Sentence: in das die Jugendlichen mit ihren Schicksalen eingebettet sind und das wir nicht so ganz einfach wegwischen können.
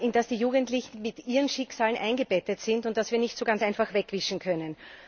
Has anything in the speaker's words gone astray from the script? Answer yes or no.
no